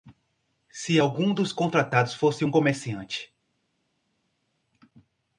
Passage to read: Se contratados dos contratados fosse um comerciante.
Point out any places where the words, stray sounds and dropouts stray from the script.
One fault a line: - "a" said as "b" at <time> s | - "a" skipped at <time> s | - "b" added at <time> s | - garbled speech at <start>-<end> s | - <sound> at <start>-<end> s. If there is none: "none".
- "contratados" said as "algum" at 1.0 s